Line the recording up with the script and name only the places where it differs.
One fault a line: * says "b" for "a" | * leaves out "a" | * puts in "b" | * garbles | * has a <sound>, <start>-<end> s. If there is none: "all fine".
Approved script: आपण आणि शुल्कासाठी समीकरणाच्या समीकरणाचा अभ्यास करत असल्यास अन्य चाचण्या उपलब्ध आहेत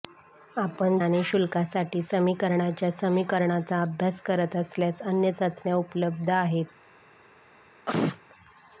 * has a sneeze, 7.9-8.2 s